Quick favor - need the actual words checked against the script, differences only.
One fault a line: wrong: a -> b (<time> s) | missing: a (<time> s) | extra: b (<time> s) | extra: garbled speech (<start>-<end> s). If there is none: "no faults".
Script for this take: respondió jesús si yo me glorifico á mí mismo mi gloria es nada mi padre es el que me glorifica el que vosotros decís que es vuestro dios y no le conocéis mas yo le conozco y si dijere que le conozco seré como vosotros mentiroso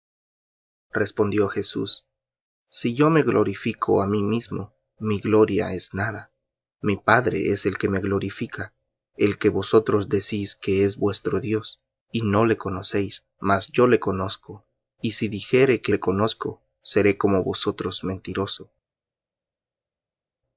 no faults